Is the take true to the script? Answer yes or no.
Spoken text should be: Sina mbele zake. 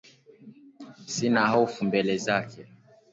no